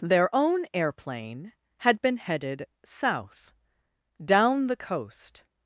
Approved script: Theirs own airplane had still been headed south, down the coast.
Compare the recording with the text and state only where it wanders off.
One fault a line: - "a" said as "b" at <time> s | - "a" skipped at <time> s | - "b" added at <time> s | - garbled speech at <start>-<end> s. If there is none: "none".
- "Theirs" said as "Their" at 0.0 s
- "still" skipped at 2.0 s